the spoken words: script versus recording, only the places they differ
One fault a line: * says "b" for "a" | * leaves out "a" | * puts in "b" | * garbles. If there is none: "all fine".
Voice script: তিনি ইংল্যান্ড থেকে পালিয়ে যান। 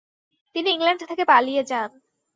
all fine